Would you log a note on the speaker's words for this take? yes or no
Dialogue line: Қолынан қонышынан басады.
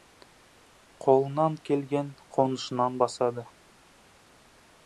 yes